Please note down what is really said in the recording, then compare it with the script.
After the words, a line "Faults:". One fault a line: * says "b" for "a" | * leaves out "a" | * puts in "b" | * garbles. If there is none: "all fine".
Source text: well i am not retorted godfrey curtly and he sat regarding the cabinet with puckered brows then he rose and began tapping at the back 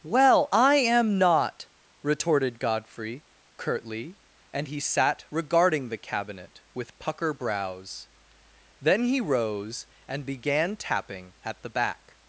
well i am not retorted godfrey curtly and he sat regarding the cabinet with pucker brows then he rose and began tapping at the back
Faults:
* says "pucker" for "puckered"